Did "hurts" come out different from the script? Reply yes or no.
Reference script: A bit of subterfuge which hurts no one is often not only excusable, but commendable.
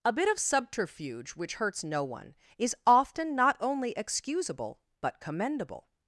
no